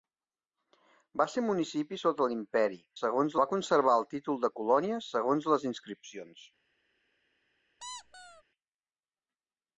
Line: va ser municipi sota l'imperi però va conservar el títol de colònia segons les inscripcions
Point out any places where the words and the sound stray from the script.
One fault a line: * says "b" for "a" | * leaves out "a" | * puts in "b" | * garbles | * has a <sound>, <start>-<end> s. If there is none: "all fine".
* says "segons" for "però"
* has a squeak, 7.8-8.4 s